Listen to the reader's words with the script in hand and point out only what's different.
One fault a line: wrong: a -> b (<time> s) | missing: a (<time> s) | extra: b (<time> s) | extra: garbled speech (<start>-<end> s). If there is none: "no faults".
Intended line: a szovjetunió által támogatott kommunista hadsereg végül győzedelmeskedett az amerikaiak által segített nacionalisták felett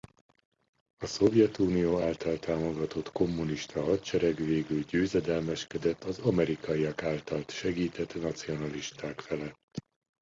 no faults